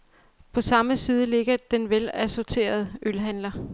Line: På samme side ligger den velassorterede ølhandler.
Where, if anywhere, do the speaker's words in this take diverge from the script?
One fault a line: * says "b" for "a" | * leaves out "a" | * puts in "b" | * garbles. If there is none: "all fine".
all fine